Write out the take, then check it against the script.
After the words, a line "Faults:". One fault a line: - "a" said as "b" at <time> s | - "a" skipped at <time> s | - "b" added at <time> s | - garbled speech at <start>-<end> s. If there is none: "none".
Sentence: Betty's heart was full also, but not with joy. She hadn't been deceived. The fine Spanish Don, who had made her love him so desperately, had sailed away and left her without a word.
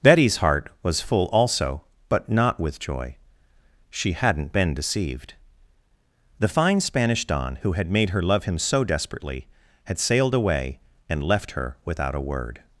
Betty's heart was full also, but not with joy. She hadn't been deceived. The fine Spanish Don, who had made her love him so desperately, had sailed away and left her without a word.
Faults:
none